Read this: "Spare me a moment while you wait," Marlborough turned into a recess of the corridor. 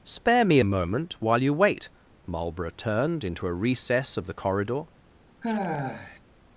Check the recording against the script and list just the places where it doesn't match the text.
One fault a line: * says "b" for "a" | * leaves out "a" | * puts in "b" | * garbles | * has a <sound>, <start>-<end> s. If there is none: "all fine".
* has a sigh, 5.4-6.2 s